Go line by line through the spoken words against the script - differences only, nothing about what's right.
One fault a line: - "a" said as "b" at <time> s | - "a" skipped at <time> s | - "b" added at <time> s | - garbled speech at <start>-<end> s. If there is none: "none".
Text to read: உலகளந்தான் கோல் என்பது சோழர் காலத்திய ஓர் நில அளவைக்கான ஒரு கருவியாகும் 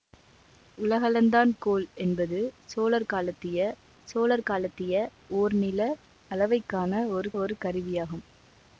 - "சோழர் காலத்திய" added at 4.0 s
- "ஒரு" added at 7.4 s